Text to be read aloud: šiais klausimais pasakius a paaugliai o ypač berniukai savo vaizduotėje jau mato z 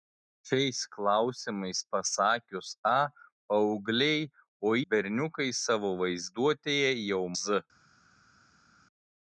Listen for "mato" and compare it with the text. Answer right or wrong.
wrong